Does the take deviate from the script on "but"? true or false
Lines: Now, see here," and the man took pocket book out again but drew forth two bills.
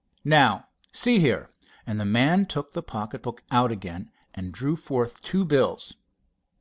true